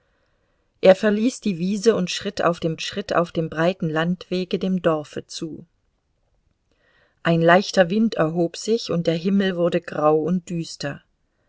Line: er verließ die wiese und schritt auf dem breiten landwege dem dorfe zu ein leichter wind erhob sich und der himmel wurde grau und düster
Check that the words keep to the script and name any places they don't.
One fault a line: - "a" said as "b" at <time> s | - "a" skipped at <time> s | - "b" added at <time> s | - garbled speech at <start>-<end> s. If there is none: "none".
- "schritt auf dem" added at 2.8 s